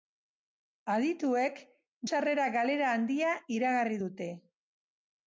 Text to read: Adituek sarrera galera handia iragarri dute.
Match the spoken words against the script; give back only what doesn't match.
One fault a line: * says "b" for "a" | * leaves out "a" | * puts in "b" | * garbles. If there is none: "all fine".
all fine